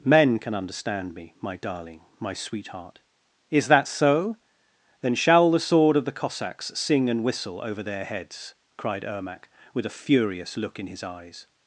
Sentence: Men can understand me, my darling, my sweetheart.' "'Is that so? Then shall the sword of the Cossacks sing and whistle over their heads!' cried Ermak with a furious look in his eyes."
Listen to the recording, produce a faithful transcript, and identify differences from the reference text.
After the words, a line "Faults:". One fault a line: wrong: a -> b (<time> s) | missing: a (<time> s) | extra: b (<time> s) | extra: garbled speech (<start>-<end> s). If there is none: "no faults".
Men can understand me, my darling, my sweetheart.' "'Is that so? Then shall the sword of the Cossacks sing and whistle over their heads!' cried Ermak with a furious look in his eyes."
Faults:
no faults